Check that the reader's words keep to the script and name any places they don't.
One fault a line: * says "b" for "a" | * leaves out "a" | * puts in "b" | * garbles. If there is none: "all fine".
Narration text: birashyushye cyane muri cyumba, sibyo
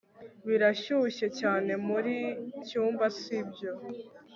all fine